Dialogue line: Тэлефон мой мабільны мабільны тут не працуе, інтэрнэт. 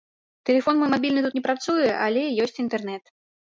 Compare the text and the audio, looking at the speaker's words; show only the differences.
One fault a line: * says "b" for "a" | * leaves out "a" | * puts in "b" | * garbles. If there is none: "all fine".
* leaves out "мабільны"
* puts in "але ёсць"